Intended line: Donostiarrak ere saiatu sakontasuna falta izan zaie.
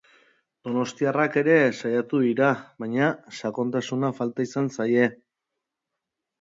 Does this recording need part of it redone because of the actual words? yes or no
yes